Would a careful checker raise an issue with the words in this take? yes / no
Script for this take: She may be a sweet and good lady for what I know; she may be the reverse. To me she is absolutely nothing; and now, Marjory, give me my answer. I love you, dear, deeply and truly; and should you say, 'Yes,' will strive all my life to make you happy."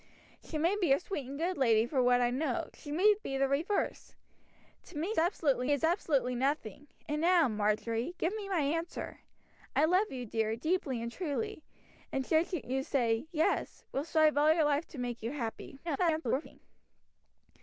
yes